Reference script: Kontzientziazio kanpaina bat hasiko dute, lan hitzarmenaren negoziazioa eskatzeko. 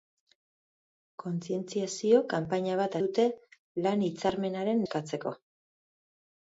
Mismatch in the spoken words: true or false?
true